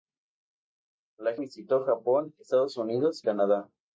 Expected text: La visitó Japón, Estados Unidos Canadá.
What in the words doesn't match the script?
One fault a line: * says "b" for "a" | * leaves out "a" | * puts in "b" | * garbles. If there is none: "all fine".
all fine